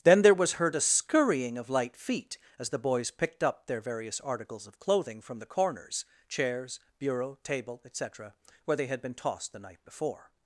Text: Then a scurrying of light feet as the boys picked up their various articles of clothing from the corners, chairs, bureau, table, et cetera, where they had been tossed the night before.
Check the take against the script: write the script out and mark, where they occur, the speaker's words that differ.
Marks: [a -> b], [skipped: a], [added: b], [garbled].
Then [added: there was heard] a scurrying of light feet as the boys picked up their various articles of clothing from the corners, chairs, bureau, table, et cetera, where they had been tossed the night before.